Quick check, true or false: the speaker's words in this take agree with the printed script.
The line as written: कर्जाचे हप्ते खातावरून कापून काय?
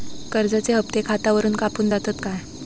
false